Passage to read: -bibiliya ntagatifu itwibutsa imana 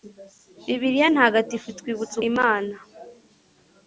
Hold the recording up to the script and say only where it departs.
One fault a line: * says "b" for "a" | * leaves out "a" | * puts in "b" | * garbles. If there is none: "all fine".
all fine